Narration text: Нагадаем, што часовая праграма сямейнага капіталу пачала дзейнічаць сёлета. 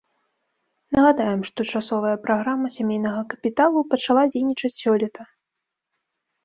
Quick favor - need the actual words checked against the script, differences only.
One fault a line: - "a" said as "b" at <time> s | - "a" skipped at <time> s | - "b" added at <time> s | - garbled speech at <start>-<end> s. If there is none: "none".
none